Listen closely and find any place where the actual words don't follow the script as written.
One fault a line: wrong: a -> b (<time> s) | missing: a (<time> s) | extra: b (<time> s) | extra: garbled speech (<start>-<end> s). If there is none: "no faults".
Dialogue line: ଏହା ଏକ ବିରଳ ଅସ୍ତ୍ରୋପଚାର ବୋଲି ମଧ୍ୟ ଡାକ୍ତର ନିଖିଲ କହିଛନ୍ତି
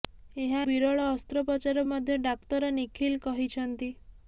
missing: ଏକ (0.6 s)
missing: ବୋଲି (1.8 s)